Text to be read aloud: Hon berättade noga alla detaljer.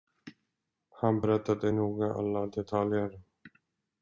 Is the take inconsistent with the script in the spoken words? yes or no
yes